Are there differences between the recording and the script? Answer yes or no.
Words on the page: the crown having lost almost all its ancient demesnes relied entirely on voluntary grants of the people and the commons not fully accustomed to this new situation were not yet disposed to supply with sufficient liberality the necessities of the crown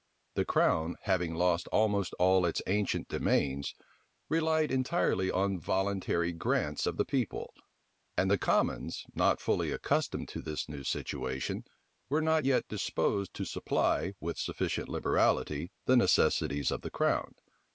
no